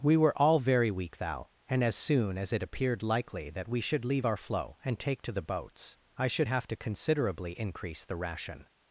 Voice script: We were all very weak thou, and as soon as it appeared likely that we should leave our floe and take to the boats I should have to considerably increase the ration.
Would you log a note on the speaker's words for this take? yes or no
no